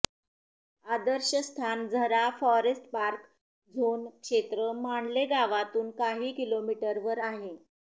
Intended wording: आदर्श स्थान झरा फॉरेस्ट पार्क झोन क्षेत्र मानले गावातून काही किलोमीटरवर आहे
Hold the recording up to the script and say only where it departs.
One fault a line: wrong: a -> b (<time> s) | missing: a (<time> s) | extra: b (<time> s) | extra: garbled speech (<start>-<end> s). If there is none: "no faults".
no faults